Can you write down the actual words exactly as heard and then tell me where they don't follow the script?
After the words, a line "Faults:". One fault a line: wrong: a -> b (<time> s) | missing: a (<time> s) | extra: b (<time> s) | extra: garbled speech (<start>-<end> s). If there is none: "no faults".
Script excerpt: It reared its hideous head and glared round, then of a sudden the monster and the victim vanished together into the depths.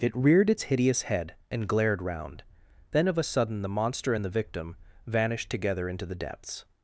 It reared its hideous head and glared round, then of a sudden the monster and the victim vanished together into the depths.
Faults:
no faults